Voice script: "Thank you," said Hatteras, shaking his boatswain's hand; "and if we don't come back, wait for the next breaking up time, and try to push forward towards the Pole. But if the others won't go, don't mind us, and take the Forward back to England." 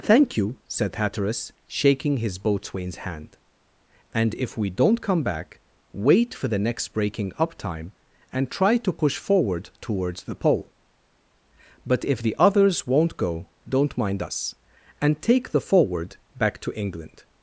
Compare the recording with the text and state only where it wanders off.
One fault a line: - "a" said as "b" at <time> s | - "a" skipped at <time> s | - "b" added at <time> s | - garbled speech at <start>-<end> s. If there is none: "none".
none